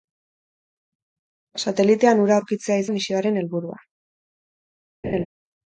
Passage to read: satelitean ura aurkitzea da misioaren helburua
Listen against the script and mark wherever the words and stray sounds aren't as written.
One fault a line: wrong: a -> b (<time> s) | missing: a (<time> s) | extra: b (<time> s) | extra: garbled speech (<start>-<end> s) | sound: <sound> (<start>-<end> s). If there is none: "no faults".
sound: laugh (5.0-5.3 s)